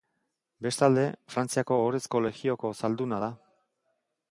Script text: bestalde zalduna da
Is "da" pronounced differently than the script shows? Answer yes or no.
no